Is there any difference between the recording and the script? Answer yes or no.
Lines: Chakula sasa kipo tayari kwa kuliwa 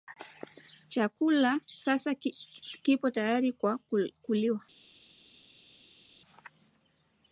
no